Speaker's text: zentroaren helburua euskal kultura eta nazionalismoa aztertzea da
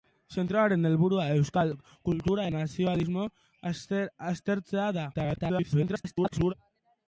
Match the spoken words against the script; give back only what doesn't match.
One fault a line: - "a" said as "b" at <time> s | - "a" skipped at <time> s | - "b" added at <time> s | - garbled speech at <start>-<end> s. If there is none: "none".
- "eta" skipped at 2.5 s
- garbled speech at 5.1-6.5 s